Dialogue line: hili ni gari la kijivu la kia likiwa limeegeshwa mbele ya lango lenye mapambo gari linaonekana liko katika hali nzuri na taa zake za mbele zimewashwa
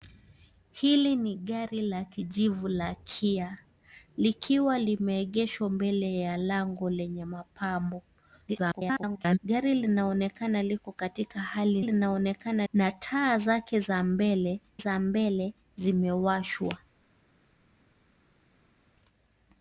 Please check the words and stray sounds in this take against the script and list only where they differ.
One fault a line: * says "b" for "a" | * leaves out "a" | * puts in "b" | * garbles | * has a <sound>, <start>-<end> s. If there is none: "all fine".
* garbles
* says "linaonekana" for "nzuri"
* puts in "za mbele"